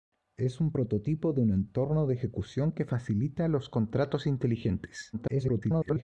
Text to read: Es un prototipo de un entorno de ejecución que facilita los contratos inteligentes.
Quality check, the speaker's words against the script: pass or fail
fail